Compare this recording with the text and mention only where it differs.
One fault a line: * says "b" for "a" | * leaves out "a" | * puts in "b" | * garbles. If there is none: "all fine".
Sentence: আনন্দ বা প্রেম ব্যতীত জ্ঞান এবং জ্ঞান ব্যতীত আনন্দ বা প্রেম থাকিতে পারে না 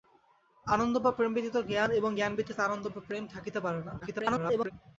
* garbles